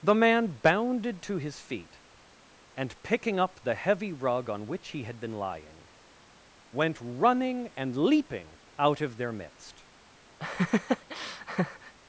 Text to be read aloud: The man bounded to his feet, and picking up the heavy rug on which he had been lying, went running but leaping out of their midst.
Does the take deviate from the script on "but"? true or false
true